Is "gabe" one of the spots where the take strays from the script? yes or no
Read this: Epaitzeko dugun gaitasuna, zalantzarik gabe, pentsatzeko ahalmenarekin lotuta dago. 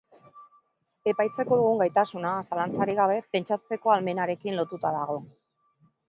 no